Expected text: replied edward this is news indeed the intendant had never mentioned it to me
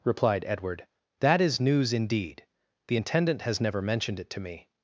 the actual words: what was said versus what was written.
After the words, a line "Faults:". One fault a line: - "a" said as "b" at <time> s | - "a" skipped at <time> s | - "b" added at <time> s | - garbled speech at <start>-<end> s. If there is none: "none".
replied edward that is news indeed the intendant has never mentioned it to me
Faults:
- "this" said as "that" at 1.2 s
- "had" said as "has" at 3.4 s